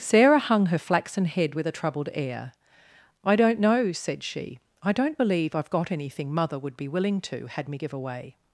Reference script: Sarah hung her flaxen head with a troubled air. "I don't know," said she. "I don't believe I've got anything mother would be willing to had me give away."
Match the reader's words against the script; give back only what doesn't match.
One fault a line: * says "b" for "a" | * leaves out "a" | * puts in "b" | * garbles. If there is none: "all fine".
all fine